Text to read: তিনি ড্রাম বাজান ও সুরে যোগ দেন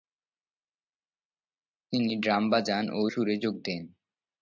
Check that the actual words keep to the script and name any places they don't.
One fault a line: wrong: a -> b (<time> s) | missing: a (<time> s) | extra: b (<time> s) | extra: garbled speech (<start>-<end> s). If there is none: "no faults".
no faults